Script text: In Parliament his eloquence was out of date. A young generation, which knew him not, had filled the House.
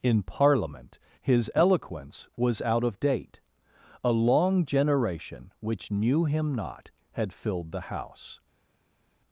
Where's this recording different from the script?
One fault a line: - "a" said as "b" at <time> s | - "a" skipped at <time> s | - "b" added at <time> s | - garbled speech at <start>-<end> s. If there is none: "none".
- "young" said as "long" at 4.1 s